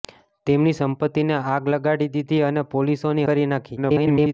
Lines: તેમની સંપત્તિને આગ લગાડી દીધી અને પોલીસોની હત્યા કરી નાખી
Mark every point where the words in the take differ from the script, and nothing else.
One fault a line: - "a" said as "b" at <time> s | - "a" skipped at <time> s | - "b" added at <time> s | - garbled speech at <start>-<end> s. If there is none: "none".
- "હત્યા" skipped at 3.3 s
- garbled speech at 3.8-4.3 s